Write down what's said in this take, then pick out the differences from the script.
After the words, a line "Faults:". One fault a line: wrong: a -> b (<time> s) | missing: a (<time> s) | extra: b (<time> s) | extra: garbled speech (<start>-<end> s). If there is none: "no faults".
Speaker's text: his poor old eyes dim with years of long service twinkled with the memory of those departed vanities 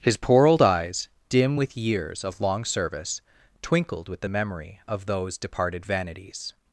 his poor old eyes dim with years of long service twinkled with the memory of those departed vanities
Faults:
no faults